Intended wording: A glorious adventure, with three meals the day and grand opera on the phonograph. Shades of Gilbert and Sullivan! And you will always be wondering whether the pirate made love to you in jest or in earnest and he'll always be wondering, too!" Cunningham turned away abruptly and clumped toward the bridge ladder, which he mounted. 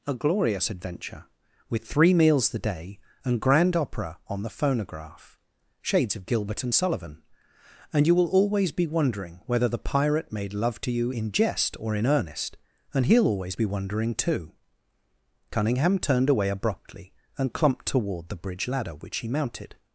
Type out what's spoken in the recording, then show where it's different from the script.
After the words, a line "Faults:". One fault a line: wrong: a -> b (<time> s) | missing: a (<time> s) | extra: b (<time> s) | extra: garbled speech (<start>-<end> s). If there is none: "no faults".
A glorious adventure, with three meals the day and grand opera on the phonograph. Shades of Gilbert and Sullivan! And you will always be wondering whether the pirate made love to you in jest or in earnest and he'll always be wondering, too!" Cunningham turned away abruptly and clumped toward the bridge ladder, which he mounted.
Faults:
no faults